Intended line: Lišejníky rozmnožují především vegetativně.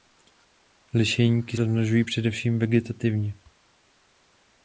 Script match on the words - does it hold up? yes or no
yes